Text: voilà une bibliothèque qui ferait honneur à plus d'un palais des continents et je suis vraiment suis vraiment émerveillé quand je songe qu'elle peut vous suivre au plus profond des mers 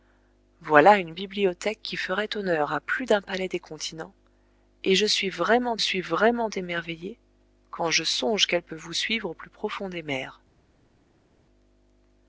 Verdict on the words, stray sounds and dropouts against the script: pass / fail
pass